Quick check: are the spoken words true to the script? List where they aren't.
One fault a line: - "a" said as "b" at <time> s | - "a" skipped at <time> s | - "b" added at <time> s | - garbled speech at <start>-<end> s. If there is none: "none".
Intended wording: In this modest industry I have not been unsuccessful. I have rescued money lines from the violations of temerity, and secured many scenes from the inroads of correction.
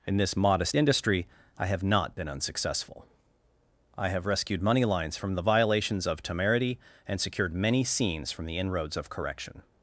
none